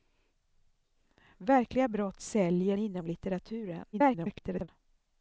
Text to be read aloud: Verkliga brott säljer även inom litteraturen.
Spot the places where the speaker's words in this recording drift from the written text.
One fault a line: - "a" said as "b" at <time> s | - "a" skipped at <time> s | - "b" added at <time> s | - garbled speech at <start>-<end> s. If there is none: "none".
- "även" skipped at 2.8 s
- garbled speech at 3.9-4.7 s